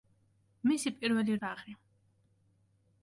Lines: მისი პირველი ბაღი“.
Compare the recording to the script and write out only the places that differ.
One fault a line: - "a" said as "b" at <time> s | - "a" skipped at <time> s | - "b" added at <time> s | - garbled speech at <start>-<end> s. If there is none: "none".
none